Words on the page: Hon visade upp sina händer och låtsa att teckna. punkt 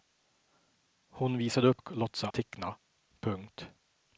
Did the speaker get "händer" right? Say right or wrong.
wrong